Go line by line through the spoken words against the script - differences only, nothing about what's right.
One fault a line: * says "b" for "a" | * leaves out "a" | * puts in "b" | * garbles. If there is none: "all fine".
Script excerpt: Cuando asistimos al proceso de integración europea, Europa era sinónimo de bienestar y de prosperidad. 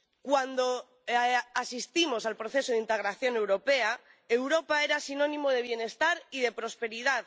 all fine